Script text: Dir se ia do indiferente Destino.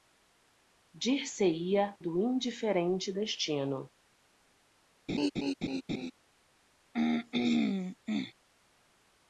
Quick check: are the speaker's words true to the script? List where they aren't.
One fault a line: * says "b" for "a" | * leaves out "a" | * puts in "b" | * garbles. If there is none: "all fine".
all fine